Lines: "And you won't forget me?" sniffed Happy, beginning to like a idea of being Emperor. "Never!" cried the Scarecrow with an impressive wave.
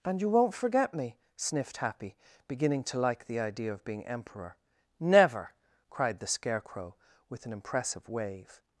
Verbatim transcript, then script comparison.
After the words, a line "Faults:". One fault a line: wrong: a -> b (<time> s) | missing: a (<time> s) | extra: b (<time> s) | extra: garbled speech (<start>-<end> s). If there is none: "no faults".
"And you won't forget me?" sniffed Happy, beginning to like the idea of being Emperor. "Never!" cried the Scarecrow with an impressive wave.
Faults:
wrong: a -> the (3.2 s)